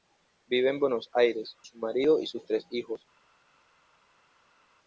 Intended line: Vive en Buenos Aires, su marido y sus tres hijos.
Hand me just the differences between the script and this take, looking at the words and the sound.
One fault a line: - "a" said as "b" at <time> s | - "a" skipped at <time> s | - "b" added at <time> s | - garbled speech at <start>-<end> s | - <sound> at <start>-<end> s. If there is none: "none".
none